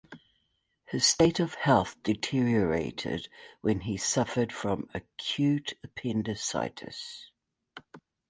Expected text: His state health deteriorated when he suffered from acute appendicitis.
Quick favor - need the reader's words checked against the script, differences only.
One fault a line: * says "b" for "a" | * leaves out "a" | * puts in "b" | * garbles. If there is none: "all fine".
* puts in "of"